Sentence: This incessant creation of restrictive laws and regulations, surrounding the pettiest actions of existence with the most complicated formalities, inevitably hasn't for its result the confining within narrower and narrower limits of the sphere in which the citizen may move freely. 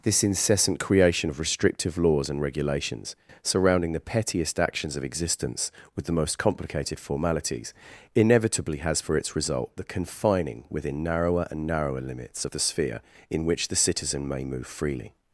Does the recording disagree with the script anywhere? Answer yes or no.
yes